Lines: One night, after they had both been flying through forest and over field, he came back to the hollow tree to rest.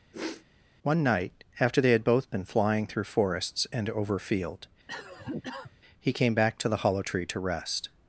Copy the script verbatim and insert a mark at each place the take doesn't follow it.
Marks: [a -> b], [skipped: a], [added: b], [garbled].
One night, after they had both been flying through [forest -> forests] and over field, he came back to the hollow tree to rest.